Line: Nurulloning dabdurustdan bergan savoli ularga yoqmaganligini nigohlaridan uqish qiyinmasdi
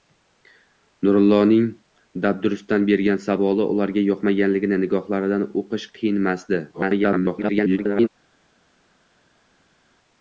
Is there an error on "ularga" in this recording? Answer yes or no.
no